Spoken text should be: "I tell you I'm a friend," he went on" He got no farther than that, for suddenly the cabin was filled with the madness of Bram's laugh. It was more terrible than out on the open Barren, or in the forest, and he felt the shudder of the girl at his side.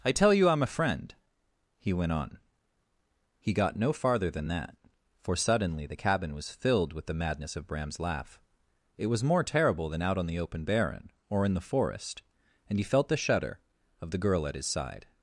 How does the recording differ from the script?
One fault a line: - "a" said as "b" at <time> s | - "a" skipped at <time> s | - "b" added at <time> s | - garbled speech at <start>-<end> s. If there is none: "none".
none